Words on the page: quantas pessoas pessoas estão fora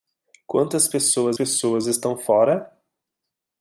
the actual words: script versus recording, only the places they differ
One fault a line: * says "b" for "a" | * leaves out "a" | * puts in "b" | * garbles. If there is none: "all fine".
all fine